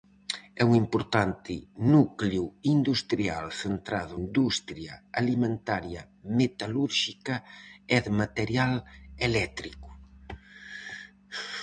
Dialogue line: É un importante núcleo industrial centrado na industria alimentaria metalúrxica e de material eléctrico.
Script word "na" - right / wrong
wrong